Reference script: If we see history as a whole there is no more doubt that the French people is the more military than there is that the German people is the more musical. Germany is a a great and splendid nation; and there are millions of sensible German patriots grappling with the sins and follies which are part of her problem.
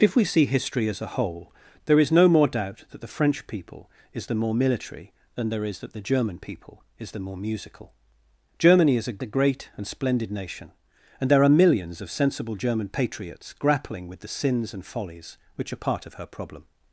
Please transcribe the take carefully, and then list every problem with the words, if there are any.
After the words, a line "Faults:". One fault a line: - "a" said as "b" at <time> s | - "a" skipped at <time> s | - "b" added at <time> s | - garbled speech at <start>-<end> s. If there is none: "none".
If we see history as a whole there is no more doubt that the French people is the more military than there is that the German people is the more musical. Germany is a a great and splendid nation; and there are millions of sensible German patriots grappling with the sins and follies which are part of her problem.
Faults:
none